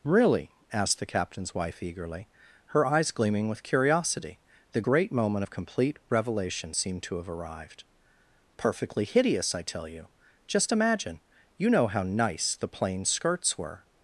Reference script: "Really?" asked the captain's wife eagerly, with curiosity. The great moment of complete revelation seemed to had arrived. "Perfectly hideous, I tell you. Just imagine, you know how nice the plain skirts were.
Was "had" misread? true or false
true